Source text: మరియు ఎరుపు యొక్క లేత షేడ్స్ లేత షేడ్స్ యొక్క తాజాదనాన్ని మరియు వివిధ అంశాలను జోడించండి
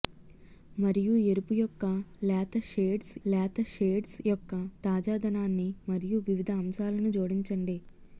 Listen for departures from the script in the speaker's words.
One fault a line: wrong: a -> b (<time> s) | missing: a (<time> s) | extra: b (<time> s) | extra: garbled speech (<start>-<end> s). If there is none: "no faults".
no faults